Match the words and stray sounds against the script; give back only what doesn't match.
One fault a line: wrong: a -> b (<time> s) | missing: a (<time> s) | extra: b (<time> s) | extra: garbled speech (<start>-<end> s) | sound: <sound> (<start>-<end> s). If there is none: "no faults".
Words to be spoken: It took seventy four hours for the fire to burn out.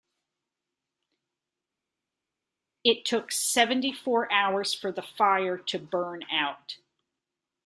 no faults